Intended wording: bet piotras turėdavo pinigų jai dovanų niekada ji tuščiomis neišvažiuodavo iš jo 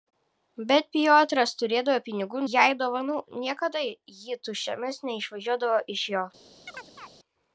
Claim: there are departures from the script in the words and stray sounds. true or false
true